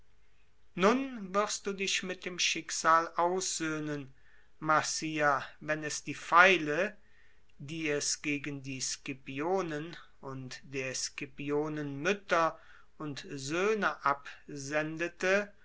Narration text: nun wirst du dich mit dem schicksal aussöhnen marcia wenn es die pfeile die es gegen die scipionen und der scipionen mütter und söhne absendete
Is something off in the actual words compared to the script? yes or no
no